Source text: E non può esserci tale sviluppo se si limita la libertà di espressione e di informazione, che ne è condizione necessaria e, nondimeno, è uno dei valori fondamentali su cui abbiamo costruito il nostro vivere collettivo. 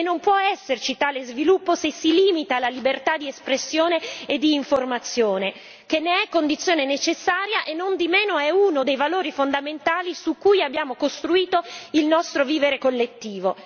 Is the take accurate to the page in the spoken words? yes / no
yes